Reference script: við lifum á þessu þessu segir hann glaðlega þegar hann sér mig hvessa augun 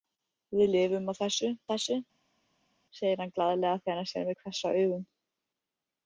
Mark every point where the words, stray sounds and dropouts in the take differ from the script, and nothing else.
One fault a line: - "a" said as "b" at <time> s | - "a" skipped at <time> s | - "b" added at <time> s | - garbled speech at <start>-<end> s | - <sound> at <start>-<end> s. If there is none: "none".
none